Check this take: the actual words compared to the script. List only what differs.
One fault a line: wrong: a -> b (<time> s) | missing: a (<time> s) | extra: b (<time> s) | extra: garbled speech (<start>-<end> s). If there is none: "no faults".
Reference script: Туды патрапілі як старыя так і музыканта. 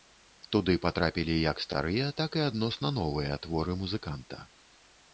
extra: адносна новыя творы (2.5 s)